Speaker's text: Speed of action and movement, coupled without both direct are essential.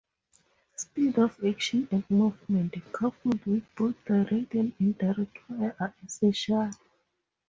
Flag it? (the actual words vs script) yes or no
yes